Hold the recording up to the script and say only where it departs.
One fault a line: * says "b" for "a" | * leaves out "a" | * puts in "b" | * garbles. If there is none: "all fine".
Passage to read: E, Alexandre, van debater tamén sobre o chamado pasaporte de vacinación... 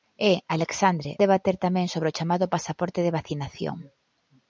* leaves out "van"